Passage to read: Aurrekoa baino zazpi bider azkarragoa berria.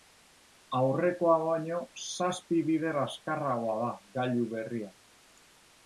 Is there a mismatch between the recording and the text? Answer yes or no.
yes